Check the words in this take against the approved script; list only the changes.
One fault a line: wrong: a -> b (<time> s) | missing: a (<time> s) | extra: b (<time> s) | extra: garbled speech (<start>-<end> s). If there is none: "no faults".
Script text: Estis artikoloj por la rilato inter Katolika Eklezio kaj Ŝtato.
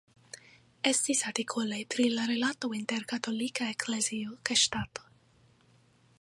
wrong: por -> pri (1.9 s)